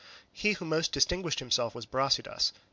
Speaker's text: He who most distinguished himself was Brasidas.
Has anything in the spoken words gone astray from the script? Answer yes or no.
no